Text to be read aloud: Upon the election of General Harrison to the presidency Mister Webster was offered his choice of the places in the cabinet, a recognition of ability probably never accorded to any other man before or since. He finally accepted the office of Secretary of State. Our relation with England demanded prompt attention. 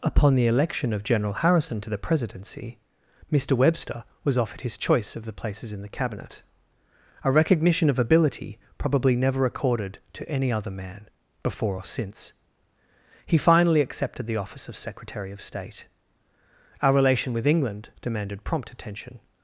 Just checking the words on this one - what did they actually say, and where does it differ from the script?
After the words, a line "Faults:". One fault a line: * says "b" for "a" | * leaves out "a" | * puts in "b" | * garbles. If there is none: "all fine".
Upon the election of General Harrison to the presidency Mister Webster was offered his choice of the places in the cabinet, a recognition of ability probably never accorded to any other man before or since. He finally accepted the office of Secretary of State. Our relation with England demanded prompt attention.
Faults:
all fine